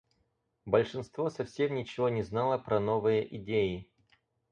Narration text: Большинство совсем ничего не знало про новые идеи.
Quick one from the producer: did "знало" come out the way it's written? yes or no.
yes